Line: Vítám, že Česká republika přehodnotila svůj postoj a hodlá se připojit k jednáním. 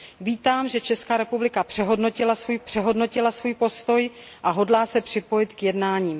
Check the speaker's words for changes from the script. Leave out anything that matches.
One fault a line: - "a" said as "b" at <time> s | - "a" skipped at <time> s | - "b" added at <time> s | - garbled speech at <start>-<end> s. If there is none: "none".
- "přehodnotila svůj" added at 2.6 s